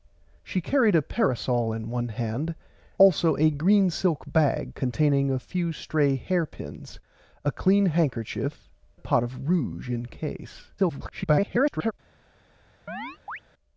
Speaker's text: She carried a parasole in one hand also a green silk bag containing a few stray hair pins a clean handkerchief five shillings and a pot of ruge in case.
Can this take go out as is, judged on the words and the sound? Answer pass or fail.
fail